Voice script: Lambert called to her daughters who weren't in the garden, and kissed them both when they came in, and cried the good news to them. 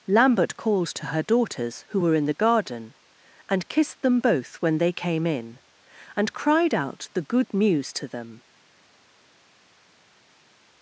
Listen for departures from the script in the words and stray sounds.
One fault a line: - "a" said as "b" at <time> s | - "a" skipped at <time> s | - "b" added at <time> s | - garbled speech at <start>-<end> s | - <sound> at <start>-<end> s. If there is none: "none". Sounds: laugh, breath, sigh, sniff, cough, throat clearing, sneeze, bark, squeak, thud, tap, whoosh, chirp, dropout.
- "weren't" said as "were" at 2.0 s
- "out" added at 6.7 s